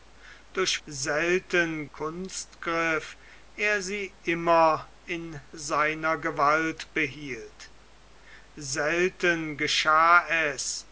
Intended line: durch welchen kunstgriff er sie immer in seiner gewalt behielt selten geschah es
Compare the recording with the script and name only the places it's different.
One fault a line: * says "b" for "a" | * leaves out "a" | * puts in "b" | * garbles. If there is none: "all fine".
* says "selten" for "welchen"